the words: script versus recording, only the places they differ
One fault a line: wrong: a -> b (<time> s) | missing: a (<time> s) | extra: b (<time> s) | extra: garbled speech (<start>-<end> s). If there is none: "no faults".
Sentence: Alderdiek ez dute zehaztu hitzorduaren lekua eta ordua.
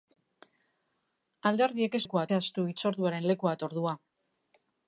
wrong: dute -> lekua (2.0 s)